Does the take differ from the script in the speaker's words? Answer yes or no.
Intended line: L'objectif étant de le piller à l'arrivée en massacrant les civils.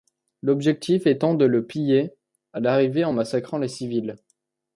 no